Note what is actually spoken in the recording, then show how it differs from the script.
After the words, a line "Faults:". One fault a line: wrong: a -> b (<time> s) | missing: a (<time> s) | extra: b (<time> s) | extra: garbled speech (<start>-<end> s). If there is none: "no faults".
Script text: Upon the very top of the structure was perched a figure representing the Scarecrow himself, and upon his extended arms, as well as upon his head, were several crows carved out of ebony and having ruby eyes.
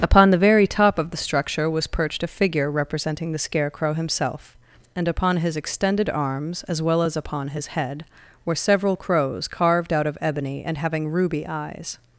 Upon the very top of the structure was perched a figure representing the Scarecrow himself, and upon his extended arms, as well as upon his head, were several crows carved out of ebony and having ruby eyes.
Faults:
no faults